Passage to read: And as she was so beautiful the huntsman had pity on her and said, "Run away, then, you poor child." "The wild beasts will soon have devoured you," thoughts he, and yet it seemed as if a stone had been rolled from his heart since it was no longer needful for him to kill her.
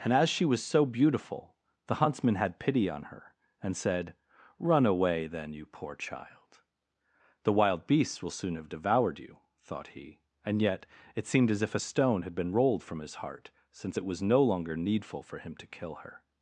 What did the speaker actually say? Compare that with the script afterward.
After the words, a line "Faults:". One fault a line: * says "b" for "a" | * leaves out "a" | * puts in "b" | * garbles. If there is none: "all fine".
And as she was so beautiful the huntsman had pity on her and said, "Run away, then, you poor child." "The wild beasts will soon have devoured you," thought he, and yet it seemed as if a stone had been rolled from his heart since it was no longer needful for him to kill her.
Faults:
* says "thought" for "thoughts"